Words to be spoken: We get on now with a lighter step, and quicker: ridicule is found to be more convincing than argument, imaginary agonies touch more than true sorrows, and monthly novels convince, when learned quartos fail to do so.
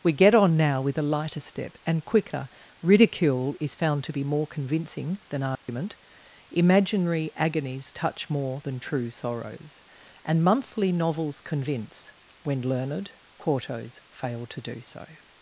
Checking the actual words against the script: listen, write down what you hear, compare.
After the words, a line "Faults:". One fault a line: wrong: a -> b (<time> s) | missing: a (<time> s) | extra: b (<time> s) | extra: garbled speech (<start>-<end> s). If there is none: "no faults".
We get on now with a lighter step, and quicker: ridicule is found to be more convincing than argument, imaginary agonies touch more than true sorrows, and monthly novels convince, when learned quartos fail to do so.
Faults:
no faults